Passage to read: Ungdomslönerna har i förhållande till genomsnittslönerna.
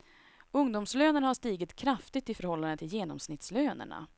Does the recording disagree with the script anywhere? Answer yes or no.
yes